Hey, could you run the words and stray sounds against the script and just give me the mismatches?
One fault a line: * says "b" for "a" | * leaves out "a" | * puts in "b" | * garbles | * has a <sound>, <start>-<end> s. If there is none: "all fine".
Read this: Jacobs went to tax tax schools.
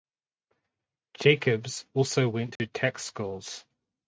* puts in "also"
* has a dropout, 2.6-2.6 s
* leaves out "tax"